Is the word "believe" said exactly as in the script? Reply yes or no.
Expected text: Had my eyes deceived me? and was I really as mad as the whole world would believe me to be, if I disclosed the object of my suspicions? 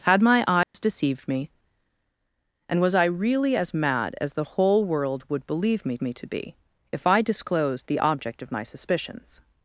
yes